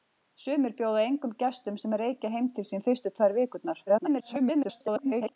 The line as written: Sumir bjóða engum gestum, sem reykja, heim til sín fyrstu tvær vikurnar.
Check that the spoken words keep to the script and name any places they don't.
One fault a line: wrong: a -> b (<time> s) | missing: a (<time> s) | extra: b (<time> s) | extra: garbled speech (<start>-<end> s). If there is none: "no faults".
extra: garbled speech (3.9-5.4 s)